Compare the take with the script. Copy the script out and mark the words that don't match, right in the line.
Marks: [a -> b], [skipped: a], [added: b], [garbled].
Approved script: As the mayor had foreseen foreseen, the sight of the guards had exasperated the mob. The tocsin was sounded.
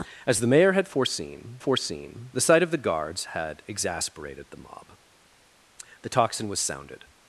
As the mayor had foreseen foreseen, the sight of the guards had exasperated the mob. The tocsin was sounded.